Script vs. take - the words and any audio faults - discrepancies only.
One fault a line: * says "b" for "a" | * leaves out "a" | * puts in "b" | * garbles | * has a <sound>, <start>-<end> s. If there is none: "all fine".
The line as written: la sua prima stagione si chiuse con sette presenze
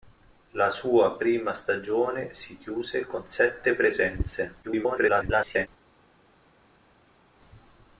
* garbles